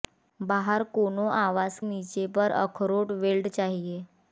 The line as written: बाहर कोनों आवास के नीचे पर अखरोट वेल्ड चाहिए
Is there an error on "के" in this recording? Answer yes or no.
yes